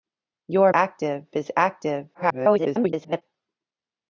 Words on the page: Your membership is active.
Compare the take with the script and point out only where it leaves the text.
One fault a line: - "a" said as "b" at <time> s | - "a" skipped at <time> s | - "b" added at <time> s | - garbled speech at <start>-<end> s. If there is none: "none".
- "membership" said as "active" at 0.7 s
- garbled speech at 2.1-3.2 s